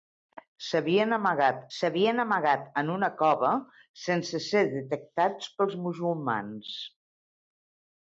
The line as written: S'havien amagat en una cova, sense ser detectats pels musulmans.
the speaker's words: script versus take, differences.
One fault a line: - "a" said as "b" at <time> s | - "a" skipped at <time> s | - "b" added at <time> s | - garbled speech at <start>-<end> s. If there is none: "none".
- "s'havien amagat" added at 1.8 s